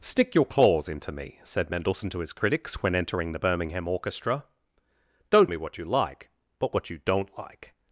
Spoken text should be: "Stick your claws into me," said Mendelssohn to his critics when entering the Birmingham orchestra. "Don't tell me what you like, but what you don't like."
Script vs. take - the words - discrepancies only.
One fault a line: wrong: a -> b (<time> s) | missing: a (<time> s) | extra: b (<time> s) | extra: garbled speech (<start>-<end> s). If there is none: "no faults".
missing: tell (5.5 s)